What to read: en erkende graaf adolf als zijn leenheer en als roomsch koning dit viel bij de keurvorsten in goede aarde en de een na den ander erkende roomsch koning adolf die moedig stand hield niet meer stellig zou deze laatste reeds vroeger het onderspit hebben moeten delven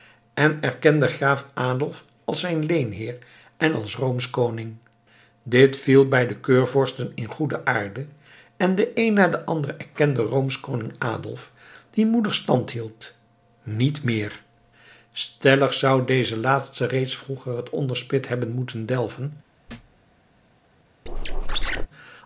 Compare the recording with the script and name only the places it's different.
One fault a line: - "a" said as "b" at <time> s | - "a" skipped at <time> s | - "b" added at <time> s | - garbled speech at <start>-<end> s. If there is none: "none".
none